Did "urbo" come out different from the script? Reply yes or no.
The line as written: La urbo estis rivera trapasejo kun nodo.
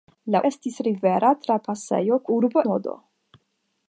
yes